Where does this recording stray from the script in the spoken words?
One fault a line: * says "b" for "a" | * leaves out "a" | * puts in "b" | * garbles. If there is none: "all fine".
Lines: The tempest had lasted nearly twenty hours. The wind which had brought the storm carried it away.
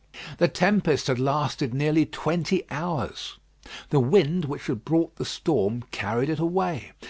all fine